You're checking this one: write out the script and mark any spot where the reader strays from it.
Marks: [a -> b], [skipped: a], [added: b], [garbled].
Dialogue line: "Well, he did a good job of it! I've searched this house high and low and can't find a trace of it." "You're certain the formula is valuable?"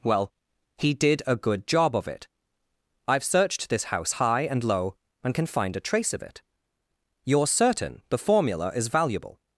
"Well, he did a good job of it! I've searched this house high and low and [can't -> can] find a trace of it." "You're certain the formula is valuable?"